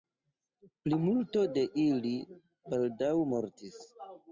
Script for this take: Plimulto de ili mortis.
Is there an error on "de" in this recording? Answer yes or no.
no